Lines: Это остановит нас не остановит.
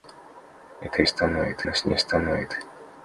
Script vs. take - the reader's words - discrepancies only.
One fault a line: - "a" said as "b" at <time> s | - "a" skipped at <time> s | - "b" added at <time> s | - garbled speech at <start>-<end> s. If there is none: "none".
none